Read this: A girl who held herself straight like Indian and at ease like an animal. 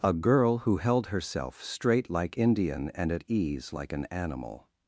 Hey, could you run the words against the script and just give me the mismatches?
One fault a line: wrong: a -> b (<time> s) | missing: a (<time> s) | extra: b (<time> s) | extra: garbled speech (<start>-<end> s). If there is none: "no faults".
no faults